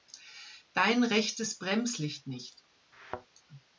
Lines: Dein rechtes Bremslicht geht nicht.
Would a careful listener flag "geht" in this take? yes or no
yes